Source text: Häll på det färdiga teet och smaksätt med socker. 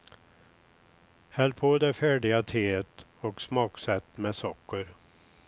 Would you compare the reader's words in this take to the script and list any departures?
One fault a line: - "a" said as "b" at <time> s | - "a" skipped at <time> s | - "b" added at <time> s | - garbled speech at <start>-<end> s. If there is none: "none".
none